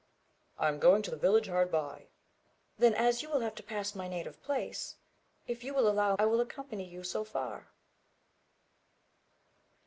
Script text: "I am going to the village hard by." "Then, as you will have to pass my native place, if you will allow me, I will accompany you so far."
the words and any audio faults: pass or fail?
fail